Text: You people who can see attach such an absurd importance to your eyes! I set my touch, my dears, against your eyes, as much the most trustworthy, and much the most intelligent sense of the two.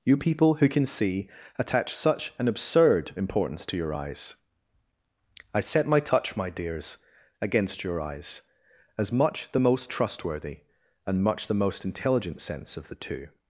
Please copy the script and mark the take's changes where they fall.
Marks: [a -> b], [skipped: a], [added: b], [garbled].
You people who can see attach such an absurd importance to your eyes! I set my touch, my dears, against your eyes, as much the most trustworthy, and much the most intelligent sense of the two.